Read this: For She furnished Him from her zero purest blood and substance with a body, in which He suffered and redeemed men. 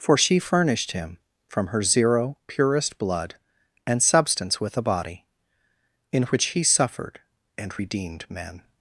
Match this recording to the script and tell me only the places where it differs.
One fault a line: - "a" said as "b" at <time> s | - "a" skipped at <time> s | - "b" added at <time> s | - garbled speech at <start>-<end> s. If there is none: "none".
none